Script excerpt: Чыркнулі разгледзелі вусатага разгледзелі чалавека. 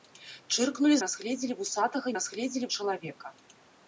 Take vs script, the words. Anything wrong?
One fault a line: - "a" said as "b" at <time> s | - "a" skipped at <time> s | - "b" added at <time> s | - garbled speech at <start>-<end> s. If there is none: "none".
none